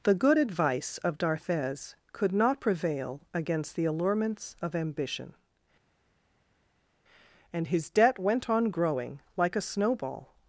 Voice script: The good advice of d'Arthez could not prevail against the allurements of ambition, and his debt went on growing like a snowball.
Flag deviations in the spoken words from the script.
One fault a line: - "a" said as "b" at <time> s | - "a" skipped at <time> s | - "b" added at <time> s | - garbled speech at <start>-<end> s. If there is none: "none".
none